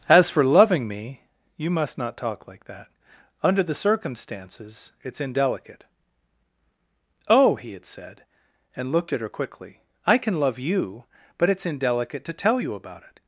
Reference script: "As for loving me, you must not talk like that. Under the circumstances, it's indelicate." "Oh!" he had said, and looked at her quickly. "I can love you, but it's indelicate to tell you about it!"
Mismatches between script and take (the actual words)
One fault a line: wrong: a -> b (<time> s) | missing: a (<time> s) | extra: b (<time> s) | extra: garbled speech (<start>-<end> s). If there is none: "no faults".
no faults